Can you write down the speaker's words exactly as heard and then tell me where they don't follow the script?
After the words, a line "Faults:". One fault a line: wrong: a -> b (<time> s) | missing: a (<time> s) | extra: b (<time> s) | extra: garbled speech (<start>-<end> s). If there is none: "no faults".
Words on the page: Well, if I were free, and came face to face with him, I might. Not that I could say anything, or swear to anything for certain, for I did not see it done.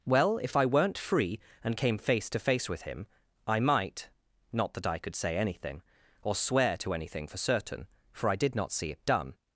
Well, if I weren't free, and came face to face with him, I might. Not that I could say anything, or swear to anything for certain, for I did not see it done.
Faults:
wrong: were -> weren't (0.7 s)